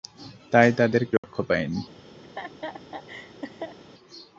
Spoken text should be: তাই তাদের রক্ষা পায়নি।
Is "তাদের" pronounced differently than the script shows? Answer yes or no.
no